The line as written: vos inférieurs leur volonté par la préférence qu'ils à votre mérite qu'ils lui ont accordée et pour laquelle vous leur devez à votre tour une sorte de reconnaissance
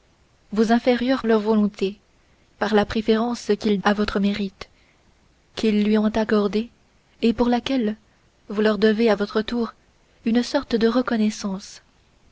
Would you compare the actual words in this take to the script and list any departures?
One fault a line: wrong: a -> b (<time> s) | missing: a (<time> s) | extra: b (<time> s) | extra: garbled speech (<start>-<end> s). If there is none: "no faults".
no faults